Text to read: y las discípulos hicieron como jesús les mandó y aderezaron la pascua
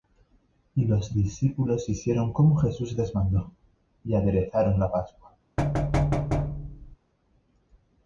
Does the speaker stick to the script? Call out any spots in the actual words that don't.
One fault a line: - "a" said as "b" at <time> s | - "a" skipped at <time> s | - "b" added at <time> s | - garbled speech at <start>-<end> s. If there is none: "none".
- "las" said as "los" at 0.8 s